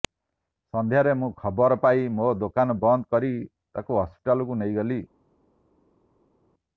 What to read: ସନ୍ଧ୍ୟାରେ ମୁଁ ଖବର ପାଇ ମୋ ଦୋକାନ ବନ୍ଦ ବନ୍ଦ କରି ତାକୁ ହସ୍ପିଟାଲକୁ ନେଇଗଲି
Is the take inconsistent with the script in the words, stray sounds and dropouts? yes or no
yes